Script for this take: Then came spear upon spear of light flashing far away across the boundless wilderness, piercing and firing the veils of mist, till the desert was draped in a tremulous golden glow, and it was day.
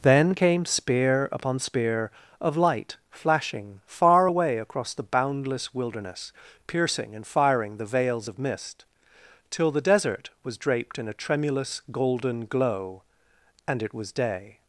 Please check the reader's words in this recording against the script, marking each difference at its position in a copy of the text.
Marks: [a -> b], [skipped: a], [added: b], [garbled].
Then came spear upon spear of light flashing far away across the boundless wilderness, piercing and firing the veils of mist, till the desert was draped in a tremulous golden glow, and it was day.